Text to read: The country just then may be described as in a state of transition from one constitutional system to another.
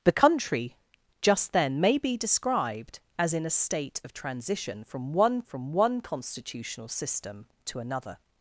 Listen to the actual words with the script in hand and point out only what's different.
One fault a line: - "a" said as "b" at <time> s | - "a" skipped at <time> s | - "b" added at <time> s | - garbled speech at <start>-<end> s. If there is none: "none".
- "from one" added at 5.4 s